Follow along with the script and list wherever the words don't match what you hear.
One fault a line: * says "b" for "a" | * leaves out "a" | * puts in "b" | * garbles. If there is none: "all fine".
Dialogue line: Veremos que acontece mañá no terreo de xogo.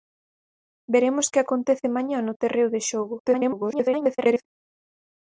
* garbles